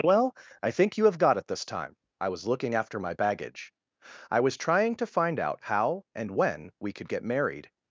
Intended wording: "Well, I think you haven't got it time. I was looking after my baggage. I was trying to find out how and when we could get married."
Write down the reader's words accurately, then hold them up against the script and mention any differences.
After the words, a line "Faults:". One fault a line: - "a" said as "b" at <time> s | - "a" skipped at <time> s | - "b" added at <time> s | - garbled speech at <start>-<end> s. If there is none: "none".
"Well, I think you have got it this time. I was looking after my baggage. I was trying to find out how and when we could get married."
Faults:
- "haven't" said as "have" at 1.1 s
- "this" added at 1.4 s